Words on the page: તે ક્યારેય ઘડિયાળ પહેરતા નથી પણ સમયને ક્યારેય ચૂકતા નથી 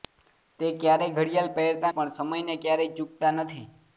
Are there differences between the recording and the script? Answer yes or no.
yes